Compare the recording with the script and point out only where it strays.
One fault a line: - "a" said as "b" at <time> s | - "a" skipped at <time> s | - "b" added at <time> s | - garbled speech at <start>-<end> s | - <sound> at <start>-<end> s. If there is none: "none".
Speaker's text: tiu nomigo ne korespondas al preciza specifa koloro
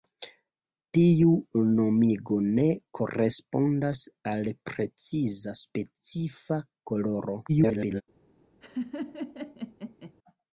- garbled speech at 7.5-8.0 s
- laugh at 8.6-10.1 s